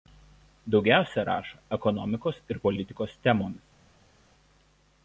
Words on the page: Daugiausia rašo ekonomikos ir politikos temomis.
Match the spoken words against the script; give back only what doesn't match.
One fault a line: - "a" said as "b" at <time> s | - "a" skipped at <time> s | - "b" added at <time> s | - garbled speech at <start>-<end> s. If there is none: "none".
none